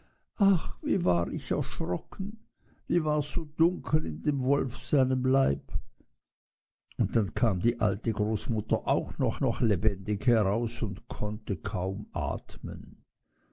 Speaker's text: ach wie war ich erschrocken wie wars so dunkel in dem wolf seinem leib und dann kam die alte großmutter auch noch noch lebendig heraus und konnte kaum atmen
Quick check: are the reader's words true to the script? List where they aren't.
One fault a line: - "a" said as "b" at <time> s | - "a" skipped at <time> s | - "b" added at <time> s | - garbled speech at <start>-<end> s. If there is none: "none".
none